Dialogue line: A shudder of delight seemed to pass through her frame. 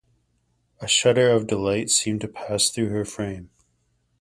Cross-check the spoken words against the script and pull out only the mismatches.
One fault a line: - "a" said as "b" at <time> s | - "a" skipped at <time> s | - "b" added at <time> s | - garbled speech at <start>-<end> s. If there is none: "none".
none